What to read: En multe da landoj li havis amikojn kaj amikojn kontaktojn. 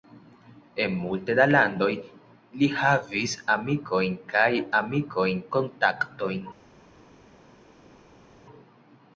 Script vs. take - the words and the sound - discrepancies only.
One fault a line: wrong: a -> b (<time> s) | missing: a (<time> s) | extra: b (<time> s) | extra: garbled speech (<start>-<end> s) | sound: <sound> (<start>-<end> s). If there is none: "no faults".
no faults